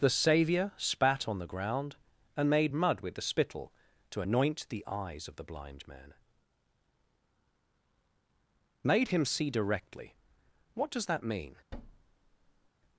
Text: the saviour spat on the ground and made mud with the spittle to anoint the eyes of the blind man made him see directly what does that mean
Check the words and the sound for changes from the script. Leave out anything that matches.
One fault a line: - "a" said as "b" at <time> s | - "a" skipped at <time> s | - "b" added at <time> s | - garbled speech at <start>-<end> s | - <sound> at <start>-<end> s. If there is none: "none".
- thud at 11.7-12.7 s